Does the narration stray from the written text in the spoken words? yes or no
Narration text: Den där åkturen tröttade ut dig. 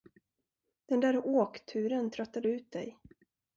no